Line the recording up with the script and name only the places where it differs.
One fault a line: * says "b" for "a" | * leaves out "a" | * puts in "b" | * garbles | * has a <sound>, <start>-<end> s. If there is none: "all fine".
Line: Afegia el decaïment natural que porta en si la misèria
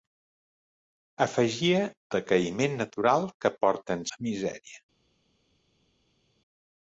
* leaves out "el"
* leaves out "si"